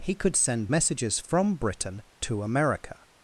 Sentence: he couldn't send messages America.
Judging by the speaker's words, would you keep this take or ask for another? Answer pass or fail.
fail